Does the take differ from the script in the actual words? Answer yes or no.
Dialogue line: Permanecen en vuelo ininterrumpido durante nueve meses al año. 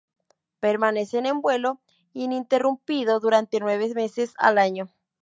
no